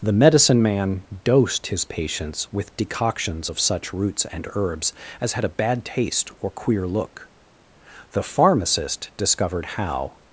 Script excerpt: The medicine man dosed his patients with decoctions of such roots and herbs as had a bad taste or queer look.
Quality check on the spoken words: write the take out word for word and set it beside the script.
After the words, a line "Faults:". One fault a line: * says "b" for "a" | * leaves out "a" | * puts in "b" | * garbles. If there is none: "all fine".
The medicine man dosed his patients with decoctions of such roots and herbs as had a bad taste or queer look. The pharmacist discovered how
Faults:
* puts in "The pharmacist discovered how"